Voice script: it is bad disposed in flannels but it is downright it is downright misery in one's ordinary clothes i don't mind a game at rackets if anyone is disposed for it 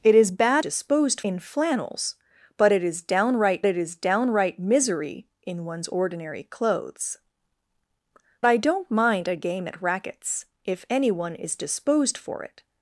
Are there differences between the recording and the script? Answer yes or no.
no